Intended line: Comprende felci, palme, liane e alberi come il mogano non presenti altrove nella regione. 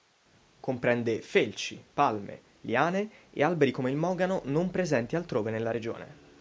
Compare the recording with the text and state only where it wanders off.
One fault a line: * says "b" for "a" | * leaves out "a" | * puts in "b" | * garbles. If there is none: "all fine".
all fine